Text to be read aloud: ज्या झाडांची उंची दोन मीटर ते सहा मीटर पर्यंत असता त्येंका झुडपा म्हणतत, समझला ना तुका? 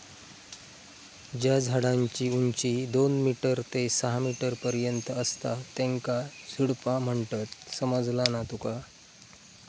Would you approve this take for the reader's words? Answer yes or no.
yes